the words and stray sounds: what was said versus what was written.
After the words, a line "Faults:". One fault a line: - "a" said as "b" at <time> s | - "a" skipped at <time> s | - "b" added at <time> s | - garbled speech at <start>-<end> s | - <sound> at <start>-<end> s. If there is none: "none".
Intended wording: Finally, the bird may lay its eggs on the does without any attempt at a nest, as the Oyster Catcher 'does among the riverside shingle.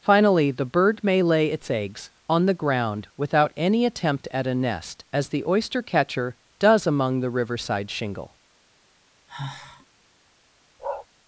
Finally, the bird may lay its eggs on the ground without any attempt at a nest, as the Oyster Catcher 'does among the riverside shingle.
Faults:
- "does" said as "ground" at 2.5 s
- sigh at 9.3-9.9 s
- bark at 10.8-11.1 s